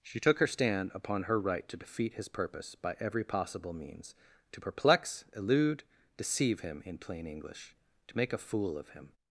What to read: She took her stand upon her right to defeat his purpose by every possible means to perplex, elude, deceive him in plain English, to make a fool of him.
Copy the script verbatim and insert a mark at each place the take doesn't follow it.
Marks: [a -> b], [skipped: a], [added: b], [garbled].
She took her stand upon her right to defeat his purpose by every possible means to perplex, elude, deceive him in plain English, to make a fool of him.